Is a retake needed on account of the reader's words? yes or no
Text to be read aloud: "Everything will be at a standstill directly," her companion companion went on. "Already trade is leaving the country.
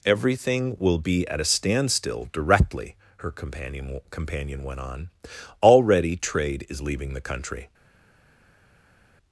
no